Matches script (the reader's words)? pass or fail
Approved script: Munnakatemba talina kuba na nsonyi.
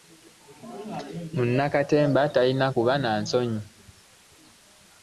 pass